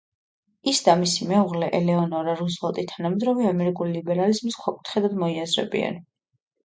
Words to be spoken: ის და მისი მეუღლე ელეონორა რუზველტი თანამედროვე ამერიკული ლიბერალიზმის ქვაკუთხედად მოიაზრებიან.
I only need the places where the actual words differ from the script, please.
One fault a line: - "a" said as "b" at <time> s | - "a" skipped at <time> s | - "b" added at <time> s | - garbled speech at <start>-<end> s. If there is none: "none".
none